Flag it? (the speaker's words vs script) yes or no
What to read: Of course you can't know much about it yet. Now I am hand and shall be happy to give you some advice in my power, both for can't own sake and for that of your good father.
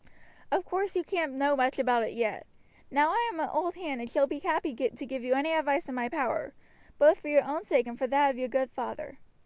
yes